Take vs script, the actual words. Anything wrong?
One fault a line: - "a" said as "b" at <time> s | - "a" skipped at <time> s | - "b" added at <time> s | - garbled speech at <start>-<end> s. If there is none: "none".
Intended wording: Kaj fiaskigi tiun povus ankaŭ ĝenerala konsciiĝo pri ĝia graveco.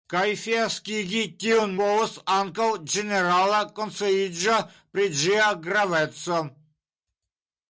none